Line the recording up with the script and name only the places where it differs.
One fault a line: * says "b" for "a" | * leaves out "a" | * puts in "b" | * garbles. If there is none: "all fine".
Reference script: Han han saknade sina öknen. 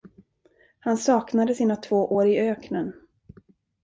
* leaves out "han"
* puts in "två år i"